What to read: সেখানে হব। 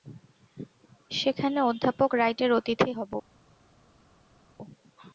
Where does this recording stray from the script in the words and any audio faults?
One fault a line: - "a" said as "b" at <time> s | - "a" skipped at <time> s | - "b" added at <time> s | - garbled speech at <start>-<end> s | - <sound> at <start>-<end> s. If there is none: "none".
- "অধ্যাপক রাইটের অতিথি" added at 1.6 s